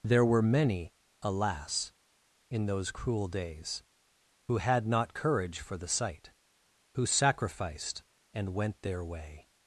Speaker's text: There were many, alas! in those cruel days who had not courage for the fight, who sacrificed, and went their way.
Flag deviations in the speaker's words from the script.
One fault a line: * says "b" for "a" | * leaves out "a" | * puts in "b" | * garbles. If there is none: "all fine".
* says "sight" for "fight"